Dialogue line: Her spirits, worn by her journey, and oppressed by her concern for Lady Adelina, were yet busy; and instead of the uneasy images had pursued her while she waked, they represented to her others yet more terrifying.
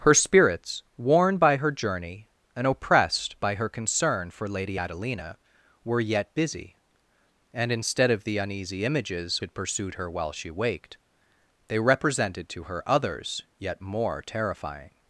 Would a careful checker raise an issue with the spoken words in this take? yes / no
no